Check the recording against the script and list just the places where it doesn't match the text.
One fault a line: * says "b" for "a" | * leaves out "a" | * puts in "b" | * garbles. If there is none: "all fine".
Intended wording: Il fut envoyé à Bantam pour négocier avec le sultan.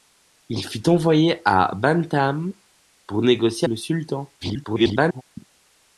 * leaves out "avec"
* garbles